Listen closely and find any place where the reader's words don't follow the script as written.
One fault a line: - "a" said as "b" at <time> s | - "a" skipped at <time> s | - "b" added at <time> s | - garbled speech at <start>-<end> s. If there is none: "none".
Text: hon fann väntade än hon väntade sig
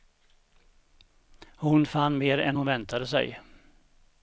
- "väntade" said as "mer" at 2.2 s